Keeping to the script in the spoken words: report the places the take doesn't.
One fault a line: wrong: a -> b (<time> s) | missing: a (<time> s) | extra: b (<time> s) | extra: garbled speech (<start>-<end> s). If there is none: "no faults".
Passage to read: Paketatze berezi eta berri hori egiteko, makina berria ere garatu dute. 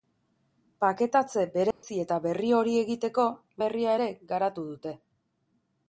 missing: makina (3.3 s)